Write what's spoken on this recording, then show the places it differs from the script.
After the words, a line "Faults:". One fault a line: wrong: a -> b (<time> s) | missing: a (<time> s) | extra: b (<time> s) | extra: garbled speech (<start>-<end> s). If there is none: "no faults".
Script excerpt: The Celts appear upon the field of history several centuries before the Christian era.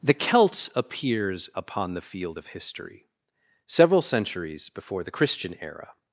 The Celts appears upon the field of history several centuries before the Christian era.
Faults:
wrong: appear -> appears (0.8 s)